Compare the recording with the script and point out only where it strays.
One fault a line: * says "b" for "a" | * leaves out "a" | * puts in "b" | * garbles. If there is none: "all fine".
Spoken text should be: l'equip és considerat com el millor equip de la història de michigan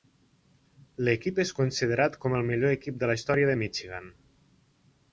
all fine